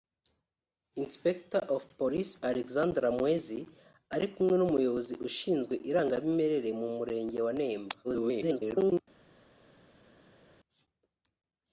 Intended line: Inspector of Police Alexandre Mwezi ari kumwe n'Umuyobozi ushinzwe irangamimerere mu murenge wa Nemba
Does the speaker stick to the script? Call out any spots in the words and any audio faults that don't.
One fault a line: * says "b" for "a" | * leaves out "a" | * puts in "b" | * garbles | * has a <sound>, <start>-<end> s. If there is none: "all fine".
* garbles